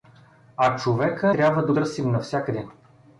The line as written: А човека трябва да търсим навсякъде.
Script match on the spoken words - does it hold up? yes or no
yes